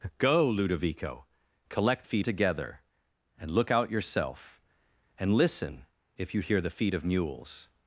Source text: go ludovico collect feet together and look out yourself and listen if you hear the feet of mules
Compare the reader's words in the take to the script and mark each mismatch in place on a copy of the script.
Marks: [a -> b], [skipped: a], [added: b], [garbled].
go ludovico collect feet together and look out yourself and listen if you hear the feet of mules